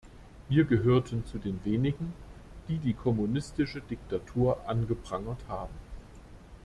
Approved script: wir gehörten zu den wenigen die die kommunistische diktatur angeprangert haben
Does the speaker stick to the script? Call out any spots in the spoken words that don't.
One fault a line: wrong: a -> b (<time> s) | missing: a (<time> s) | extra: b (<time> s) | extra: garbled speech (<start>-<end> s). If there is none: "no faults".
no faults